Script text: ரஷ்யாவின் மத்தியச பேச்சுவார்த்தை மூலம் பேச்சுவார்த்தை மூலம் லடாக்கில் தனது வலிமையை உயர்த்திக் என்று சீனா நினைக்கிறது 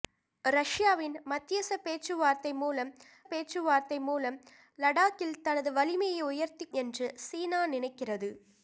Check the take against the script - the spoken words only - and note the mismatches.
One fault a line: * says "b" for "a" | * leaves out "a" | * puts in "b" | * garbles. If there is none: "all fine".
all fine